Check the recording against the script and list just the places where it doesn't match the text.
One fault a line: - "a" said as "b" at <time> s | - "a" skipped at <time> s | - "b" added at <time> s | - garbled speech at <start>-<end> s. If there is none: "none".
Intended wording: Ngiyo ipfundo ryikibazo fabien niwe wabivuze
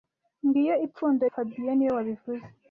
- "ryikibazo" skipped at 1.2 s